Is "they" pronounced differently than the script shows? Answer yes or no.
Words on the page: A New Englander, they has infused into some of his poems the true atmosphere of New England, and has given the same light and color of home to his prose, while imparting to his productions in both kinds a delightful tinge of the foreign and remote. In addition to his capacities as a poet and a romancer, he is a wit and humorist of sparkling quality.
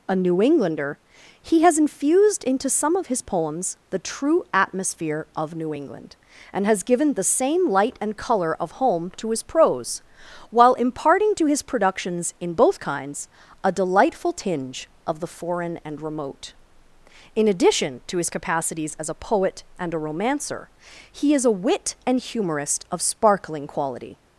yes